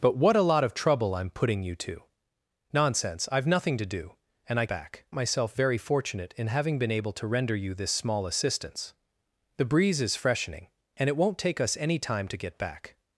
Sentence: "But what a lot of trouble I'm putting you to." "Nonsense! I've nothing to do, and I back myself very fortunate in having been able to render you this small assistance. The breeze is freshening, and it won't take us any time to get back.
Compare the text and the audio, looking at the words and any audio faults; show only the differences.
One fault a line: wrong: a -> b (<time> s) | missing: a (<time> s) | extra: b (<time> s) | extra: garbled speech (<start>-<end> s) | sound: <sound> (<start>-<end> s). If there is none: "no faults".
no faults